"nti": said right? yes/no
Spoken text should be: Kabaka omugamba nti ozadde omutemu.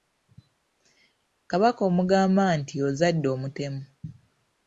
yes